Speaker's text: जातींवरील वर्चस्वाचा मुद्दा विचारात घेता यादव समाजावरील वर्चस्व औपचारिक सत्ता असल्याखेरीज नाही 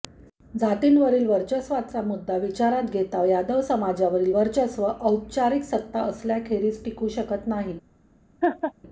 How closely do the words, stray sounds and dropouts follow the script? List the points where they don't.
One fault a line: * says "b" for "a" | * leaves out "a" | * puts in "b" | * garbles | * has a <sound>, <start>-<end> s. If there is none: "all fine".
* puts in "टिकू शकत"
* has a laugh, 8.4-8.7 s